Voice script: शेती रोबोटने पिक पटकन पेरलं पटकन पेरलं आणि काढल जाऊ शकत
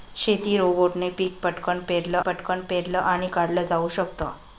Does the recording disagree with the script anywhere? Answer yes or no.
no